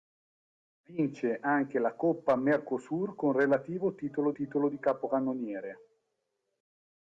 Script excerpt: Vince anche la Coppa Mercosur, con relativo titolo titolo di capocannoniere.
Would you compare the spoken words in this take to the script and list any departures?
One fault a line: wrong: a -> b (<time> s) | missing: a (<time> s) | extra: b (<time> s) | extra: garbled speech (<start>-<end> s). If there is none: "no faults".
no faults